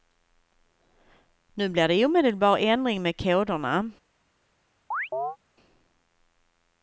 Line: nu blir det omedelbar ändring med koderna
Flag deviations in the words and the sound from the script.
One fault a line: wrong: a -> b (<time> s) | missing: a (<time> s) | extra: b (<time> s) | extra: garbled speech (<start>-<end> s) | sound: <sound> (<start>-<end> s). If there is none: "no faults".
sound: chirp (4.9-5.4 s)